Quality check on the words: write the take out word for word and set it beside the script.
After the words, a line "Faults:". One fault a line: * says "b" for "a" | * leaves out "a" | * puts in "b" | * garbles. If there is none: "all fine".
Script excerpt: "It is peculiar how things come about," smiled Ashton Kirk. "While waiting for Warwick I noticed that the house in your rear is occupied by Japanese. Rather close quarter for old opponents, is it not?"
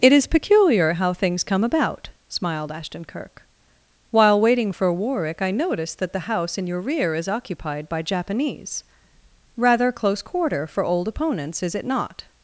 "It is peculiar how things come about," smiled Ashton Kirk. "While waiting for Warwick I noticed that the house in your rear is occupied by Japanese. Rather close quarter for old opponents, is it not?"
Faults:
all fine